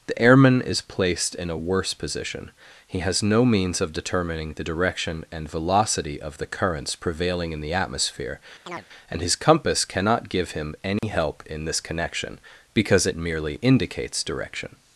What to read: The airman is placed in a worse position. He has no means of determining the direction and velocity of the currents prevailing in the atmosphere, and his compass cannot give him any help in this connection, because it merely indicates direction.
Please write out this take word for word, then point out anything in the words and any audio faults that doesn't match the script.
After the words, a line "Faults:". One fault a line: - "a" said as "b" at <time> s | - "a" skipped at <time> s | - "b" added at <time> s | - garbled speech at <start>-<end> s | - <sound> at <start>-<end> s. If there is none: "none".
The airman is placed in a worse position. He has no means of determining the direction and velocity of the currents prevailing in the atmosphere, and his compass cannot give him any help in this connection, because it merely indicates direction.
Faults:
- chirp at 8.7-8.9 s
- dropout at 11.0-11.0 s